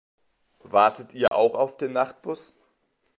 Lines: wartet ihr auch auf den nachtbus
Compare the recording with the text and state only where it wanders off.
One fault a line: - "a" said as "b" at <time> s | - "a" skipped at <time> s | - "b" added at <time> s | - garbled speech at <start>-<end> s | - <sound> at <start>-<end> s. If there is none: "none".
- dropout at 1.3-1.3 s